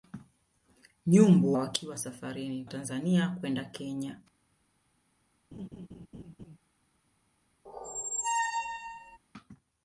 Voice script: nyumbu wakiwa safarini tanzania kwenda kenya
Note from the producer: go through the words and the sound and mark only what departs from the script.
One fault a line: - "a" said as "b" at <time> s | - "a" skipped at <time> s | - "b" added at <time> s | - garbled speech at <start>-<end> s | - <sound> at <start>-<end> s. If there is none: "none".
- laugh at 5.5-6.6 s
- squeak at 7.7-9.2 s